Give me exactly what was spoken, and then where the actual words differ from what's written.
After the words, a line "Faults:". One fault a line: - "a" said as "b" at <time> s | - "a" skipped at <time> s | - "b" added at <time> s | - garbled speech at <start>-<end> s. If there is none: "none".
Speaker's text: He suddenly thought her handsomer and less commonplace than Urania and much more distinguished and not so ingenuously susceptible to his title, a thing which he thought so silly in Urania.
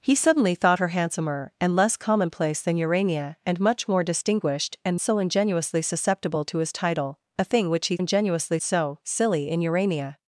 He suddenly thought her handsomer and less commonplace than Urania and much more distinguished and so ingenuously susceptible to his title, a thing which he ingenuously so silly in Urania.
Faults:
- "not" skipped at 5.0 s
- "thought" said as "ingenuously" at 8.0 s